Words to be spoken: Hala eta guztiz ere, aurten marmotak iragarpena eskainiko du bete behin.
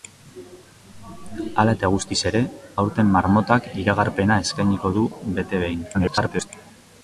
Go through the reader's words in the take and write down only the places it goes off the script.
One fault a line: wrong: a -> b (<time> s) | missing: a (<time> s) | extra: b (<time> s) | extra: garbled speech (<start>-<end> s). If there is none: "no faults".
extra: garbled speech (5.9-6.5 s)